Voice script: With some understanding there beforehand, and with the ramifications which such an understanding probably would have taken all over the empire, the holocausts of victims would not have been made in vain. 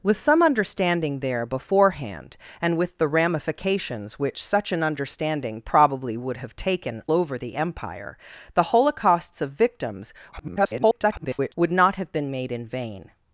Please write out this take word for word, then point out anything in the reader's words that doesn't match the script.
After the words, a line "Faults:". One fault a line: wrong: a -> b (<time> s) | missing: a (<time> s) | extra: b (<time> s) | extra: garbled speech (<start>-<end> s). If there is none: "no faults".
With some understanding there beforehand, and with the ramifications which such an understanding probably would have taken over the empire, the holocausts of victims [garbled] would not have been made in vain.
Faults:
missing: all (7.0 s)
extra: garbled speech (10.3-11.5 s)